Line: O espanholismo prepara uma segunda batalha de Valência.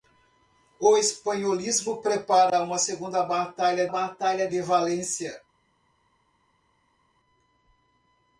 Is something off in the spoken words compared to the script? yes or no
yes